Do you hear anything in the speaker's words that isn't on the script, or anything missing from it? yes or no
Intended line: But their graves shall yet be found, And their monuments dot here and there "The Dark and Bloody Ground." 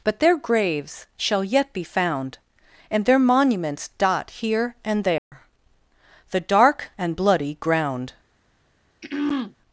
no